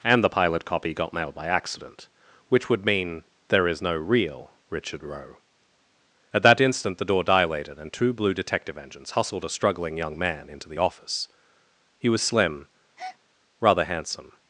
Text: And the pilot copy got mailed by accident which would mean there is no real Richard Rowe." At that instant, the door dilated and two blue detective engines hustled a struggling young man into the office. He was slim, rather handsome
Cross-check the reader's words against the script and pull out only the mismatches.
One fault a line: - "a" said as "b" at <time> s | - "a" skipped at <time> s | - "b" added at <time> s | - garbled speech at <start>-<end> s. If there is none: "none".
none